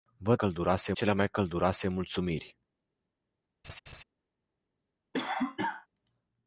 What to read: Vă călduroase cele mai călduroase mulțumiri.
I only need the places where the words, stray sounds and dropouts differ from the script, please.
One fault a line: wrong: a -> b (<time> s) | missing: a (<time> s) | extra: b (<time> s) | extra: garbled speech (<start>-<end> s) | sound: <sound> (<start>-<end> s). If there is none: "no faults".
sound: laugh (3.6-4.0 s)
sound: cough (5.1-5.9 s)